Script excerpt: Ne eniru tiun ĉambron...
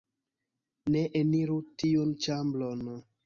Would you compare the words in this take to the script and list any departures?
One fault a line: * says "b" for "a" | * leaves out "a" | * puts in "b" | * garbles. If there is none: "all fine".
all fine